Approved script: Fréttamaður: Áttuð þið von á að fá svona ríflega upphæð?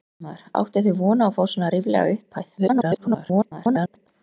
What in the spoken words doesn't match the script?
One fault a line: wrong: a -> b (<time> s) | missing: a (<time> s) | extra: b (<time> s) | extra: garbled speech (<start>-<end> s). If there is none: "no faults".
extra: garbled speech (2.6-4.1 s)